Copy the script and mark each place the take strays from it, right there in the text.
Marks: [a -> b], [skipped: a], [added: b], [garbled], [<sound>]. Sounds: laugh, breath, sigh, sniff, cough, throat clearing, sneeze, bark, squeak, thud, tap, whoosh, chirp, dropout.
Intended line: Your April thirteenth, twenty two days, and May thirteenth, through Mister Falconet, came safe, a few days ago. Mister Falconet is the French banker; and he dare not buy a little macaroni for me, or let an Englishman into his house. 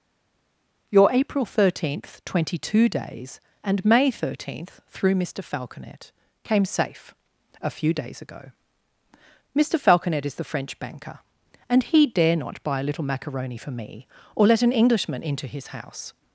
Your April thirteenth, twenty two days, and May thirteenth, through Mister Falconet, came safe, a few days ago. Mister Falconet is the French banker; and he dare not buy a little macaroni for me, or let an Englishman into his house.